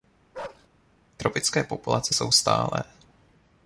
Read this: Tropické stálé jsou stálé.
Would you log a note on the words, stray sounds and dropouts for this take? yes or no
yes